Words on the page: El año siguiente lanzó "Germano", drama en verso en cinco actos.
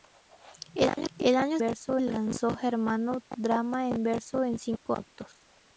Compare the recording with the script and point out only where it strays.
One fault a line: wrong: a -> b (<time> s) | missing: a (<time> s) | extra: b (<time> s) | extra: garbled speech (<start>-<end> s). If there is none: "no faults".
wrong: siguiente -> verso (1.6 s)